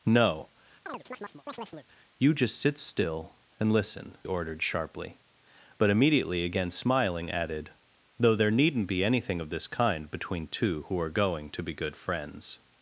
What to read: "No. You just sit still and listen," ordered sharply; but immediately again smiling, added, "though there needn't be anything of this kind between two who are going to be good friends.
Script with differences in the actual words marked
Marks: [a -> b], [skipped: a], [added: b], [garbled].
"No. You just sit still and listen," ordered sharply; but immediately again smiling, added, "though there needn't be anything of this kind between two who are going to be good friends.